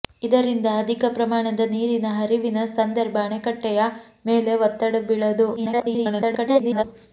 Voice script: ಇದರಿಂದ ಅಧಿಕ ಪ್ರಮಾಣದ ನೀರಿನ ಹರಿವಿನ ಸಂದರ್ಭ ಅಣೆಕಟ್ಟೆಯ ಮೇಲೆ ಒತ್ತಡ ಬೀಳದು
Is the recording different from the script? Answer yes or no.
yes